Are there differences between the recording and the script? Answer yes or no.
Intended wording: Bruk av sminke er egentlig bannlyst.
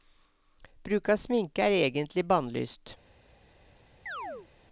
no